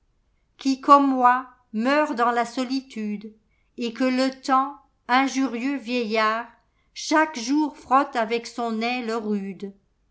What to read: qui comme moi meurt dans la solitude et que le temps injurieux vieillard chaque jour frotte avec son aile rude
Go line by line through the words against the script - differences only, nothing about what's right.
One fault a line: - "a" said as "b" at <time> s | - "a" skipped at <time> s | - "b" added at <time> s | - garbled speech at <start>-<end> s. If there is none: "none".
none